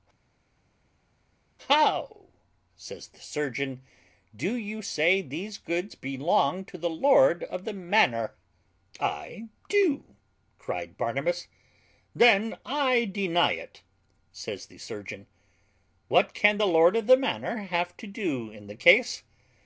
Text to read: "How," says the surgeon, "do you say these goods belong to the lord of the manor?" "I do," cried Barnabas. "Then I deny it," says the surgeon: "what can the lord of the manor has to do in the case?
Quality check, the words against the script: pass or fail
fail